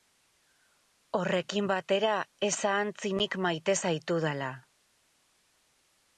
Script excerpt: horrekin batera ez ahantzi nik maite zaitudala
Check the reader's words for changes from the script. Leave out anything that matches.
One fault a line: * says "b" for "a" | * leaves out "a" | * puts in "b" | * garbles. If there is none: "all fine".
all fine